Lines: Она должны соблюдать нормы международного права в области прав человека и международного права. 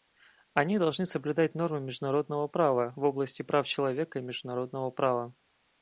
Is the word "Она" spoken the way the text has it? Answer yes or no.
no